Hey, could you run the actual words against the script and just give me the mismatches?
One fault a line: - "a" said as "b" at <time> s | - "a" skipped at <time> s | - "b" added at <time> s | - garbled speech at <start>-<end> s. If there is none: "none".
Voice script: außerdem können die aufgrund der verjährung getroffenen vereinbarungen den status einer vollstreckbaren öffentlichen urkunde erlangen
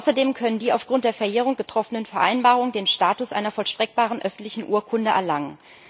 none